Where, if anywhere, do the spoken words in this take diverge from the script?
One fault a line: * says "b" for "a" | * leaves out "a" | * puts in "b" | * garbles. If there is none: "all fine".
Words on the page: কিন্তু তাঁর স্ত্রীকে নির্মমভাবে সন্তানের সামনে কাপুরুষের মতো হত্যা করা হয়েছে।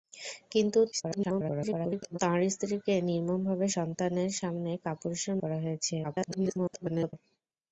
* garbles
* leaves out "মতো হত্যা"
* garbles